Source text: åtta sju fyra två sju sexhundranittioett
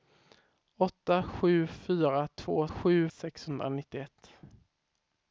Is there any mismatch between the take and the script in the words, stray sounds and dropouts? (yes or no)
no